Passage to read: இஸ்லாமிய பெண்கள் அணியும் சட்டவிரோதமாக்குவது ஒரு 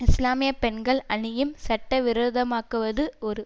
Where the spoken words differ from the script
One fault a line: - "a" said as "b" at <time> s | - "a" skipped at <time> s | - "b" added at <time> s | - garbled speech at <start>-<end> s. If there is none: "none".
none